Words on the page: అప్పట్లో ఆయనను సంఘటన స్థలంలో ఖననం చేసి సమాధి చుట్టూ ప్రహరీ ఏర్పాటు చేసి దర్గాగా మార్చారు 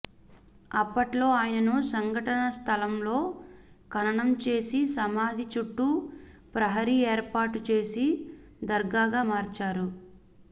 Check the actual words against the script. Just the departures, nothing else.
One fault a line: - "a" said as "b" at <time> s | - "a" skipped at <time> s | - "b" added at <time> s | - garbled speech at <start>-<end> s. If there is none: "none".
none